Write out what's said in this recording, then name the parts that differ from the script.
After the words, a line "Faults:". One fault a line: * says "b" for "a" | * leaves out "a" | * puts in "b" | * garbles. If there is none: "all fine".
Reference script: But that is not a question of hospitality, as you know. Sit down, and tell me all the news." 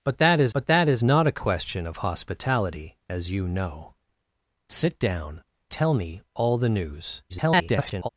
But that is but that is not a question of hospitality, as you know. Sit down, tell me all the news." [garbled]
Faults:
* puts in "but that is"
* leaves out "and"
* garbles